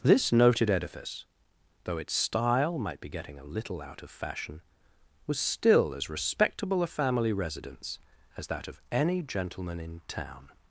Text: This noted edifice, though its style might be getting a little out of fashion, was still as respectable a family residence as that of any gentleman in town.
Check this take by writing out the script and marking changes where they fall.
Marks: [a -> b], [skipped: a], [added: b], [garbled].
This noted edifice, though its style might be getting a little out of fashion, was still as respectable a family residence as that of any gentleman in town.